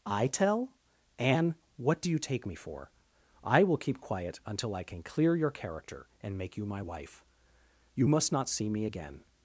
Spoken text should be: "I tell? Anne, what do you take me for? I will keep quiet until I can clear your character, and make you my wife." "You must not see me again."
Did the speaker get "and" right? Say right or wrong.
right